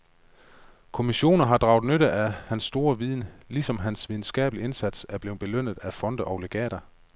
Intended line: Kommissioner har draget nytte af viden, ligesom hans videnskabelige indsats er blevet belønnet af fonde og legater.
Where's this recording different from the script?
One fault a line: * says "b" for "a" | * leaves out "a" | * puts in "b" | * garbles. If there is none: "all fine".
* puts in "hans store"